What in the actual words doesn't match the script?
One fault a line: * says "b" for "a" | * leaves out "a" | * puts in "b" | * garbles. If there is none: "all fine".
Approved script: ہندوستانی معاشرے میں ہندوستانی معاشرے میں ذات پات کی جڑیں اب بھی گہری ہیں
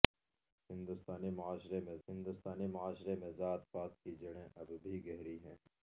all fine